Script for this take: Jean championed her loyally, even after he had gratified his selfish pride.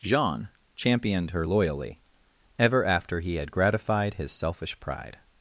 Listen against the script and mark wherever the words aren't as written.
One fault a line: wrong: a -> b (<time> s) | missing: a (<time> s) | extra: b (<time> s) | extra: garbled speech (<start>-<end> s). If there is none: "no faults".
wrong: even -> ever (2.6 s)